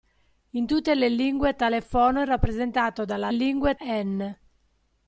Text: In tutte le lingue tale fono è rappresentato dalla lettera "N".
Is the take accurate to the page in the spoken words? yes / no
no